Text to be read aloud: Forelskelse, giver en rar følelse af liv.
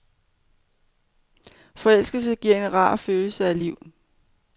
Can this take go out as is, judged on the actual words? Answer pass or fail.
pass